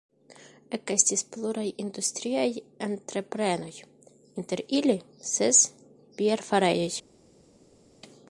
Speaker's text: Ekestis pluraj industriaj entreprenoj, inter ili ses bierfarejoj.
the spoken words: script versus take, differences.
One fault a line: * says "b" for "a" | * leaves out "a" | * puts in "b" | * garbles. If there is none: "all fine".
all fine